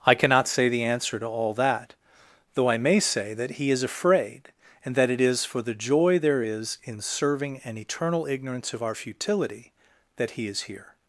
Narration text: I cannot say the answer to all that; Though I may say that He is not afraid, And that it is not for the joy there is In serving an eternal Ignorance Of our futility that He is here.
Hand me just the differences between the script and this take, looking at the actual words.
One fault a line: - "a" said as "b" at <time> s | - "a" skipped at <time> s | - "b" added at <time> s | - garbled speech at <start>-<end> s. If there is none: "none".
- "not" skipped at 3.8 s
- "not" skipped at 5.5 s